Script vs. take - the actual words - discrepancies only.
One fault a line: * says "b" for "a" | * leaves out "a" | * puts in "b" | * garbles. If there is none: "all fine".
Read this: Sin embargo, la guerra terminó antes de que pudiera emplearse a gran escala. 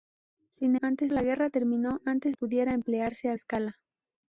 * says "antes" for "embargo"
* leaves out "de que"
* leaves out "gran"